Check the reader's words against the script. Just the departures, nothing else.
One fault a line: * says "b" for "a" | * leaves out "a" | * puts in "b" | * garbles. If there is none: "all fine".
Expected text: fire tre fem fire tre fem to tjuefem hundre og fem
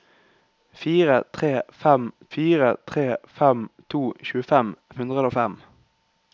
all fine